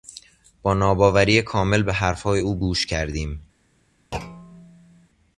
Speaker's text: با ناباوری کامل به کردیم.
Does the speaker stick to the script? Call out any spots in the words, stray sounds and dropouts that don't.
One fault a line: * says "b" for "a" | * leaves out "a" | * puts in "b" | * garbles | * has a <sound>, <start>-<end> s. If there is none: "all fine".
* puts in "حرفهای او گوش"
* has a thud, 4.1-5.1 s